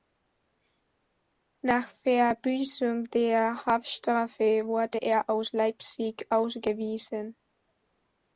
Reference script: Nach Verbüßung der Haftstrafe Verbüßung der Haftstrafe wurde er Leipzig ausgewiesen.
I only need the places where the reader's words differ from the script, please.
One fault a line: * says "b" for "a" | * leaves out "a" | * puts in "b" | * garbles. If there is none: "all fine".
* leaves out "Verbüßung der Haftstrafe"
* puts in "aus"